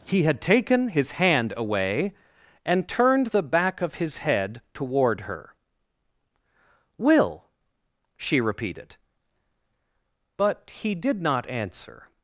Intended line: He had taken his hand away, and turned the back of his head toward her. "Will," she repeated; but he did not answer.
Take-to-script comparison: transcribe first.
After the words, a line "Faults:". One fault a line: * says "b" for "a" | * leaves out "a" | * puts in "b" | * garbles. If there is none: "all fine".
He had taken his hand away, and turned the back of his head toward her. "Will," she repeated; but he did not answer.
Faults:
all fine